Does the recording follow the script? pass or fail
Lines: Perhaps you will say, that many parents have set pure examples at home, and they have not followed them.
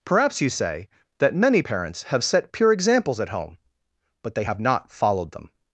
fail